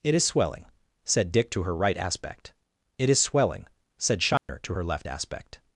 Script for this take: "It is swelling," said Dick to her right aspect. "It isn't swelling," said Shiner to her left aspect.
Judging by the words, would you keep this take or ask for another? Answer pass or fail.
fail